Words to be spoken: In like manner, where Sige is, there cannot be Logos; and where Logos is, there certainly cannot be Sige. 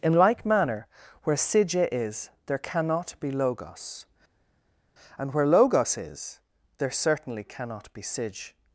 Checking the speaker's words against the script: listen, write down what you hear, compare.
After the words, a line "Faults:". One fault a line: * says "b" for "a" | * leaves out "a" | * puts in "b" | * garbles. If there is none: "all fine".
In like manner, where Sige is, there cannot be Logos; and where Logos is, there certainly cannot be Sige.
Faults:
all fine